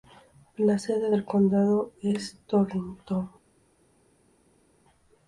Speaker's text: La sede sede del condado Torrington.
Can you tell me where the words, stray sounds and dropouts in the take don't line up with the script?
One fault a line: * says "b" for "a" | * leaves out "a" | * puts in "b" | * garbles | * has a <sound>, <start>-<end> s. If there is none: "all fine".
* leaves out "sede"
* puts in "es"